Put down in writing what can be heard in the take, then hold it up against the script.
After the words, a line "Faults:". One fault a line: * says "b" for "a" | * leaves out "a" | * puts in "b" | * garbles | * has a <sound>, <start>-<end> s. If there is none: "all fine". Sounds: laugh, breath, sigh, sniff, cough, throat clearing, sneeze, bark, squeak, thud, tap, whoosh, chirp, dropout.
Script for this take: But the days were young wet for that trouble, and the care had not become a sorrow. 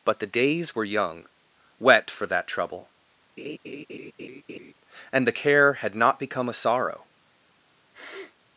But the days were young wet for that trouble, and the care had not become a sorrow.
Faults:
* has a laugh, 3.4-4.7 s
* has a sniff, 7.9-8.4 s